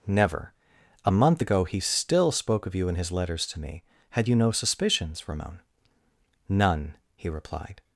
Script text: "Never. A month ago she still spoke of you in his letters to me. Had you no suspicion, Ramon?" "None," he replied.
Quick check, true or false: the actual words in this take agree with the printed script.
false